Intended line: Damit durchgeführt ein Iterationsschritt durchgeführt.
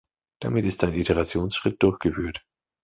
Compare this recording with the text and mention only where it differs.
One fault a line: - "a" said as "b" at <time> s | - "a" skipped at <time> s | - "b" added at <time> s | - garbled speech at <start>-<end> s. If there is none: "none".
- "durchgeführt" said as "ist" at 0.6 s